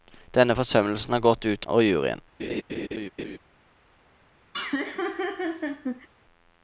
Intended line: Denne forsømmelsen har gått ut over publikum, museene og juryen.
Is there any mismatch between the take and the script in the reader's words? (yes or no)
yes